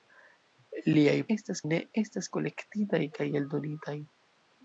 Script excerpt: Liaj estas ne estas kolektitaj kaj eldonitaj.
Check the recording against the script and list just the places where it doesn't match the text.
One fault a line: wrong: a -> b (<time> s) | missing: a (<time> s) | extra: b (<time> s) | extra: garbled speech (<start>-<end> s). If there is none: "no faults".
no faults